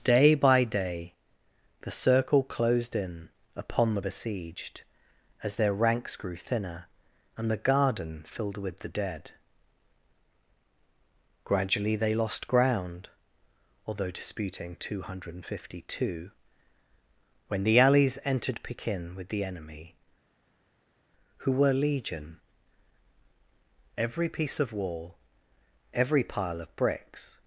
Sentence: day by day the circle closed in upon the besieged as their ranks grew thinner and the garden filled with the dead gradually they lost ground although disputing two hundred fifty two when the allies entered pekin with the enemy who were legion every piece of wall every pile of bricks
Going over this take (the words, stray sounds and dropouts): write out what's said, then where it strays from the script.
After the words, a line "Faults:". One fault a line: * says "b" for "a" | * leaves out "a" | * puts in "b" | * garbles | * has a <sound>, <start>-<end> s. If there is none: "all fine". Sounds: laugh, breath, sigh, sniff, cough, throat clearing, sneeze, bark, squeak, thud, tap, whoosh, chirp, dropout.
day by day the circle closed in upon the besieged as their ranks grew thinner and the garden filled with the dead gradually they lost ground although disputing two hundred fifty two when the allies entered pekin with the enemy who were legion every piece of wall every pile of bricks
Faults:
all fine